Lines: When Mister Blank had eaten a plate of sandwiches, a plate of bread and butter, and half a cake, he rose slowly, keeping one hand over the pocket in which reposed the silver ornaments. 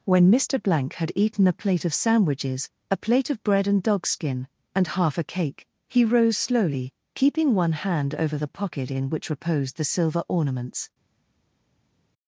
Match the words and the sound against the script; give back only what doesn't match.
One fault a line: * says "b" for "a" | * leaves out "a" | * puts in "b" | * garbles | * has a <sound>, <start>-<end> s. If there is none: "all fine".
* says "dogskin" for "butter"